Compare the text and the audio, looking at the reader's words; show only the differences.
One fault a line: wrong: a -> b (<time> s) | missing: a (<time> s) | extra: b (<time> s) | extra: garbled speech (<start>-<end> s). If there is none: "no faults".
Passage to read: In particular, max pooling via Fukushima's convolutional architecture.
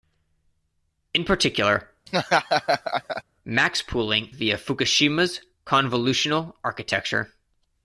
no faults